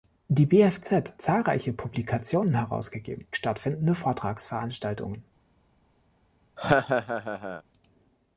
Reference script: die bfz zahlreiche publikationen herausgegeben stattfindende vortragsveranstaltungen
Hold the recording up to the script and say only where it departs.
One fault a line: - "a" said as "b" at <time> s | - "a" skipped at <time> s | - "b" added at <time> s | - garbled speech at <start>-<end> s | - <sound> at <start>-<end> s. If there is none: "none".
- laugh at 6.6-7.6 s